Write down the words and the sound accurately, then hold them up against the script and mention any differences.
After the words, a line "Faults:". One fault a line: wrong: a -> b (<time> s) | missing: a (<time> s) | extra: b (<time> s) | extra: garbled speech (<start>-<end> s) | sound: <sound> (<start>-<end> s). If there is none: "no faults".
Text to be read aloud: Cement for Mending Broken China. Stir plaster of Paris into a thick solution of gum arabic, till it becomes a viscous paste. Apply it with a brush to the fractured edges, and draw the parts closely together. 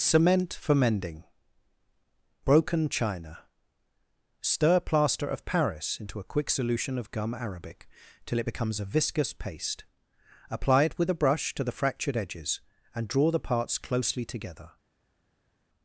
Cement for Mending Broken China. Stir plaster of Paris into a quick solution of gum arabic, till it becomes a viscous paste. Apply it with a brush to the fractured edges, and draw the parts closely together.
Faults:
wrong: thick -> quick (6.3 s)